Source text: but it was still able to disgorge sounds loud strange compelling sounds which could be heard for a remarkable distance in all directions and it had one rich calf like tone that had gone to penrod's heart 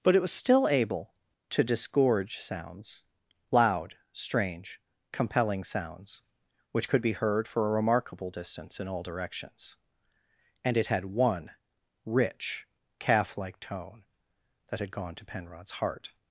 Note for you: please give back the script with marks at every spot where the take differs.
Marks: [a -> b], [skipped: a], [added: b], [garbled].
but it was still able to disgorge sounds loud strange compelling sounds which could be heard for a remarkable distance in all directions and it had one rich calf like tone that had gone to penrod's heart